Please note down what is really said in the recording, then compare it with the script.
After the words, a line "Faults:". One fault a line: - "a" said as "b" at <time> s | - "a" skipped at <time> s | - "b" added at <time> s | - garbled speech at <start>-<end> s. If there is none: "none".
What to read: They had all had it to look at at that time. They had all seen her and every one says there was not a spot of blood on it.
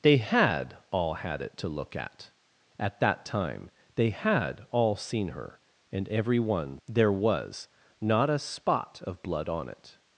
They had all had it to look at at that time. They had all seen her and every one there was not a spot of blood on it.
Faults:
- "says" skipped at 6.8 s